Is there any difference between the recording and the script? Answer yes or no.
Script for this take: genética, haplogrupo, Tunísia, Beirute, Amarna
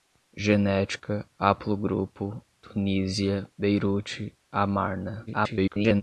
yes